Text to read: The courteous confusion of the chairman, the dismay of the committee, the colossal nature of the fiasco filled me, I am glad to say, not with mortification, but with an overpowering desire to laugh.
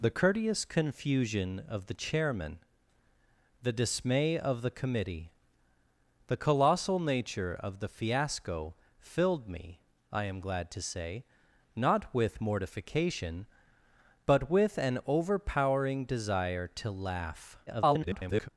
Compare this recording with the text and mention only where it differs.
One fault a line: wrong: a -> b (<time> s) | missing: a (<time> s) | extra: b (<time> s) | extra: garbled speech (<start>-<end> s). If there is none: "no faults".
extra: garbled speech (17.7-18.5 s)